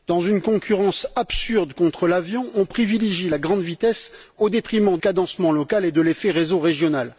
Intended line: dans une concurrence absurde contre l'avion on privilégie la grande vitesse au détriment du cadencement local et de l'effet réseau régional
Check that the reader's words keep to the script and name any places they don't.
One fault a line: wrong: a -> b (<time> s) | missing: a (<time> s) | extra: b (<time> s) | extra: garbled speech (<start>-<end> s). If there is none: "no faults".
missing: du (5.0 s)